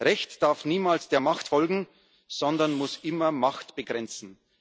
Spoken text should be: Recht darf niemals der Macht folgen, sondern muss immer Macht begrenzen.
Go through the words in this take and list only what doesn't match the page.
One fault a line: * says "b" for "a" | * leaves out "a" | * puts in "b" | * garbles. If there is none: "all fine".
all fine